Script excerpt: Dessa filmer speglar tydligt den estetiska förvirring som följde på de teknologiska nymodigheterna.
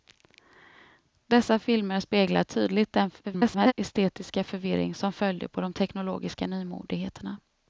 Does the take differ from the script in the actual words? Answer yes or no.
yes